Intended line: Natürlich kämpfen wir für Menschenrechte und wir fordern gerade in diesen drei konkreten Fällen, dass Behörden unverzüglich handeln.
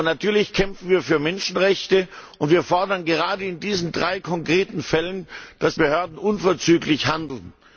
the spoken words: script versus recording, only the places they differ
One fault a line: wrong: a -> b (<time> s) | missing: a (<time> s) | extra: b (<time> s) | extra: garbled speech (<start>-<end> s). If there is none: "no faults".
no faults